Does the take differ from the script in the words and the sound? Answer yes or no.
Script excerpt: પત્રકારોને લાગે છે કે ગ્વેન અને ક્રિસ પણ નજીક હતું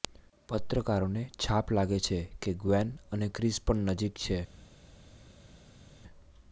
yes